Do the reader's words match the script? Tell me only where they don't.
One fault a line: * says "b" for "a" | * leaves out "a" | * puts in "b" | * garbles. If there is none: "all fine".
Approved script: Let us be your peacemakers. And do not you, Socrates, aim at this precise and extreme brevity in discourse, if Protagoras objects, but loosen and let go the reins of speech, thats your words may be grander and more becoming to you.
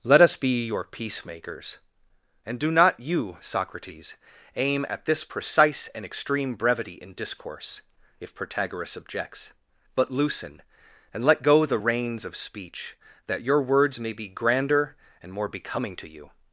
* says "that" for "thats"